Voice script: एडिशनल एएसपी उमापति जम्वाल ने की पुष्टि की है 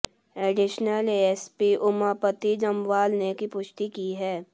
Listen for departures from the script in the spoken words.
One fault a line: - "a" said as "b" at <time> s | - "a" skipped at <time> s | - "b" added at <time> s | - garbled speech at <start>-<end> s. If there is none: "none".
none